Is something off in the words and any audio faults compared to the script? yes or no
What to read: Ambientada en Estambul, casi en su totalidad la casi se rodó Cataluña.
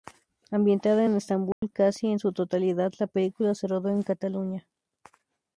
yes